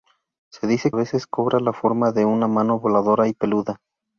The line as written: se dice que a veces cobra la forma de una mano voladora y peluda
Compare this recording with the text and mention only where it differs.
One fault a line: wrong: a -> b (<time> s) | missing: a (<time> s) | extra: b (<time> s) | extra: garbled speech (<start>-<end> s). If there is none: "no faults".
missing: que (0.9 s)